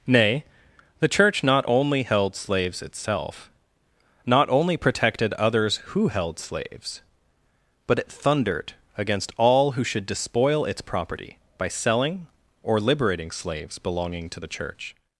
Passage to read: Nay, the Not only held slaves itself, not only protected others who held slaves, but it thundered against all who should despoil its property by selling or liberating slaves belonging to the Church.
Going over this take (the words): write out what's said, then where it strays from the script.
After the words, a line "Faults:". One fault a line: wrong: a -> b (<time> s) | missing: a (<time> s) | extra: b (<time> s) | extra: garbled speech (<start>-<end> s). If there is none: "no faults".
Nay, the Church not only held slaves itself, not only protected others who held slaves, but it thundered against all who should despoil its property by selling or liberating slaves belonging to the Church.
Faults:
extra: Church (1.1 s)